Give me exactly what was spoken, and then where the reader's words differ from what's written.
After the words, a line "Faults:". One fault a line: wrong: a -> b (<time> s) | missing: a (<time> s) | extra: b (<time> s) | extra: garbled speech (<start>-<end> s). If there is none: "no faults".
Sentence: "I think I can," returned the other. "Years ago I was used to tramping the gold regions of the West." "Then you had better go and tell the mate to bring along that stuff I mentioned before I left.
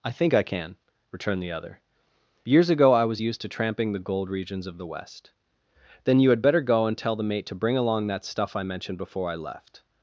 "I think I can," returned the other. "Years ago I was used to tramping the gold regions of the West." "Then you had better go and tell the mate to bring along that stuff I mentioned before I left.
Faults:
no faults